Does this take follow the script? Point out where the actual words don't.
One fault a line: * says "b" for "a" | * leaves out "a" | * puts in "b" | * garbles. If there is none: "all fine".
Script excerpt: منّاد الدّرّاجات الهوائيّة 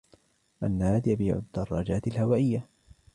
* puts in "يبيع"